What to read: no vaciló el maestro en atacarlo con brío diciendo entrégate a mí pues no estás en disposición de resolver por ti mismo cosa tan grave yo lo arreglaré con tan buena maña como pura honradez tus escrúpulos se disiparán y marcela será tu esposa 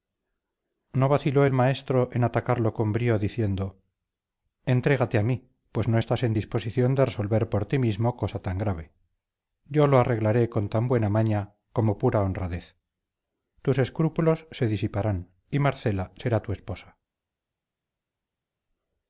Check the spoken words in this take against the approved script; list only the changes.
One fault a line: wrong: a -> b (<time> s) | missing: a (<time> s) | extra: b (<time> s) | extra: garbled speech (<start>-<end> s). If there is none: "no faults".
no faults